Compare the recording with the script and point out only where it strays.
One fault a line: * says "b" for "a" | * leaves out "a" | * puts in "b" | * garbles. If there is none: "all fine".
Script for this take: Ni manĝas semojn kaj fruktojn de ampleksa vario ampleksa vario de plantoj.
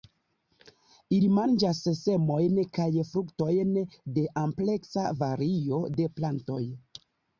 * says "Ili" for "Ni"
* leaves out "ampleksa vario"